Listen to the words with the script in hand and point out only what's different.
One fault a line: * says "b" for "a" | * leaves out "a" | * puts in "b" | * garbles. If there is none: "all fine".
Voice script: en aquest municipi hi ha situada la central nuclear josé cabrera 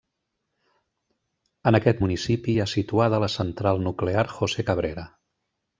all fine